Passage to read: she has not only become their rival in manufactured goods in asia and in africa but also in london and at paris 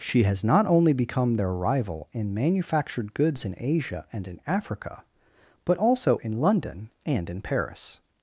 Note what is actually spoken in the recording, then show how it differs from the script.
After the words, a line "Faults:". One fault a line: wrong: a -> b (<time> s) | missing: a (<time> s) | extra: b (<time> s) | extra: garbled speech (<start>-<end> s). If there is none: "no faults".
she has not only become their rival in manufactured goods in asia and in africa but also in london and in paris
Faults:
wrong: at -> in (7.3 s)